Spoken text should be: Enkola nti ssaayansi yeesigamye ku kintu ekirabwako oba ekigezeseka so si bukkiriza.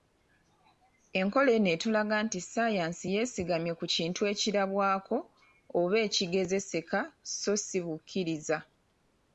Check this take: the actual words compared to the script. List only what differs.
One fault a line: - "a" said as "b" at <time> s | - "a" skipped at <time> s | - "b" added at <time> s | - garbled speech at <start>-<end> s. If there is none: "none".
- "eno etulaga" added at 1.6 s